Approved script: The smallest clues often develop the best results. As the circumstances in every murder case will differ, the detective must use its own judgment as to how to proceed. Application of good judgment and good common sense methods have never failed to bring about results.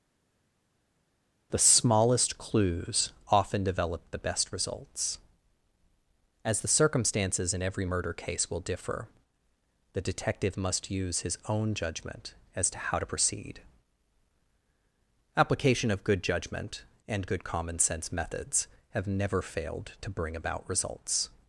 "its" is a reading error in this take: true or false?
true